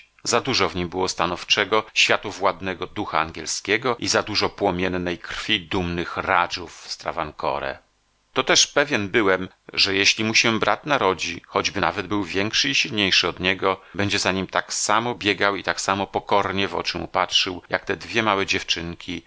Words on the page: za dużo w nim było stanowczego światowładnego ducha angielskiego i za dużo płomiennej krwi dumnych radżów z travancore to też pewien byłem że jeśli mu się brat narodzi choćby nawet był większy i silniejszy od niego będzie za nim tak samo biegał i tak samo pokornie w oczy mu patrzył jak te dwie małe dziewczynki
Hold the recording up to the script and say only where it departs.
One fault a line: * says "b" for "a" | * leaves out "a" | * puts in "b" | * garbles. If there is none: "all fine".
all fine